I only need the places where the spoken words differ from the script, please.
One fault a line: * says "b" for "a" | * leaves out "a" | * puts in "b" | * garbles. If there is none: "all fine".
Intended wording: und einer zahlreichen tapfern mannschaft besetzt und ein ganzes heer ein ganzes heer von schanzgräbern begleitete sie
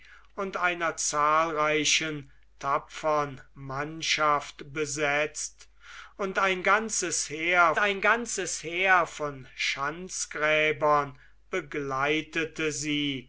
all fine